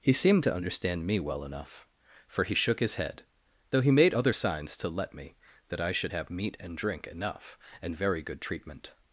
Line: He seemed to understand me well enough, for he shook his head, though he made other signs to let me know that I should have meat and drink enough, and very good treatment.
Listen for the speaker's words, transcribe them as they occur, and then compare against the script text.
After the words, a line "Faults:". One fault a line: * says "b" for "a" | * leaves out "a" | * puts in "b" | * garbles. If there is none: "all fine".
He seemed to understand me well enough, for he shook his head, though he made other signs to let me that I should have meat and drink enough, and very good treatment.
Faults:
* leaves out "know"